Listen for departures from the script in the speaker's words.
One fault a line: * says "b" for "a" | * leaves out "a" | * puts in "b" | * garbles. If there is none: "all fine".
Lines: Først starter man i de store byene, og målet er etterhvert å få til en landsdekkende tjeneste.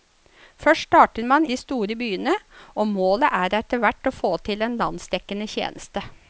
* leaves out "i"